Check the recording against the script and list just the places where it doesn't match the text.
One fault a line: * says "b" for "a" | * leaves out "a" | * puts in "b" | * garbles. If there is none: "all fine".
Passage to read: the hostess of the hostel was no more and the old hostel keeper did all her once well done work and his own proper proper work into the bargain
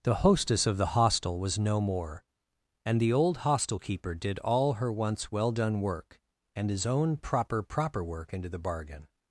all fine